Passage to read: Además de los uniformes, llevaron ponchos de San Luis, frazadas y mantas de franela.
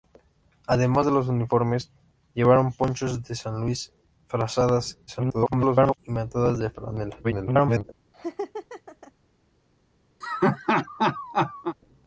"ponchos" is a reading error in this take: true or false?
false